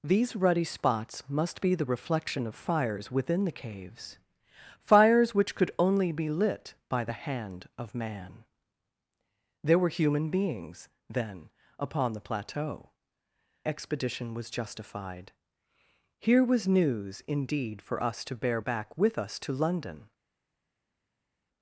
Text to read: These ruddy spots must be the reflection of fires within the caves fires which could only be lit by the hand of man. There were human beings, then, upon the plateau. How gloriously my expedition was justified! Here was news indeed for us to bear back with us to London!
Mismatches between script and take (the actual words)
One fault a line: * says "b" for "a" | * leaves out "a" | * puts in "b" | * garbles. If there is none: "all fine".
* leaves out "How gloriously my"